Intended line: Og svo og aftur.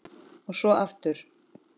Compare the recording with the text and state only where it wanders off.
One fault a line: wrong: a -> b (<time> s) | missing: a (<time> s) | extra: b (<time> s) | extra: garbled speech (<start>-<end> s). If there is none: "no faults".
no faults